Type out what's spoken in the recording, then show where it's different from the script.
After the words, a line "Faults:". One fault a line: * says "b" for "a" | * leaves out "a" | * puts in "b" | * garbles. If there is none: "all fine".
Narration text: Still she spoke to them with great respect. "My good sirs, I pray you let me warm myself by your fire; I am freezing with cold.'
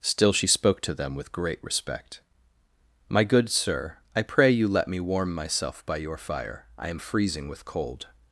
Still she spoke to them with great respect. "My good sir, I pray you let me warm myself by your fire; I am freezing with cold.'
Faults:
* says "sir" for "sirs"